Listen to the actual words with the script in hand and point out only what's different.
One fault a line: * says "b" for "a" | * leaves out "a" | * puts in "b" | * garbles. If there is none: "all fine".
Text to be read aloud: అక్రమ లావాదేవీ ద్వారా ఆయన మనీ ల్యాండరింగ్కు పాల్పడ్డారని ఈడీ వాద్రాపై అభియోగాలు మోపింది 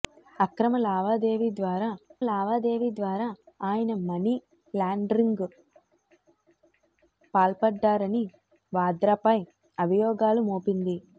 * puts in "లావాదేవీ ద్వారా"
* leaves out "ఈడీ"